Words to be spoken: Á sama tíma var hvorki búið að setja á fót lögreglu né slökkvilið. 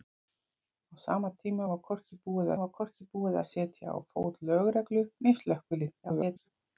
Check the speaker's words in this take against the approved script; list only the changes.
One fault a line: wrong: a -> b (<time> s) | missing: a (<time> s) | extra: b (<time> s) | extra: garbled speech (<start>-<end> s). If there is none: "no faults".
extra: var hvorki búið (2.6 s)
extra: garbled speech (6.0-6.5 s)